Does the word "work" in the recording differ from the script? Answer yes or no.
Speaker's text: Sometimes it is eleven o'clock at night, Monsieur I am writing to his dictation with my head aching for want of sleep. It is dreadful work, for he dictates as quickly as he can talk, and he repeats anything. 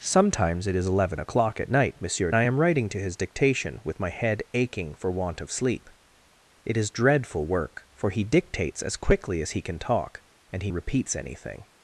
no